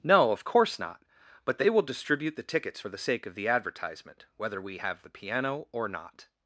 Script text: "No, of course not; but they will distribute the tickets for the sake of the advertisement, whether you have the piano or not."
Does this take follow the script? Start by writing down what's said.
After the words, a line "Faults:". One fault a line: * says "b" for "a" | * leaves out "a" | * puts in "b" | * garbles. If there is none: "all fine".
"No, of course not; but they will distribute the tickets for the sake of the advertisement, whether we have the piano or not."
Faults:
* says "we" for "you"